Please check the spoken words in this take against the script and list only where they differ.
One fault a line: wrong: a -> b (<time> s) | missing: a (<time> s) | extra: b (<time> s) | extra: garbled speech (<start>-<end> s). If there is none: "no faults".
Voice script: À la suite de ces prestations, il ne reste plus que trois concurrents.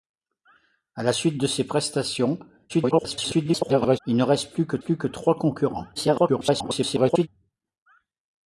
extra: garbled speech (2.7-4.0 s)
extra: plus que (4.8 s)
extra: garbled speech (6.0-7.3 s)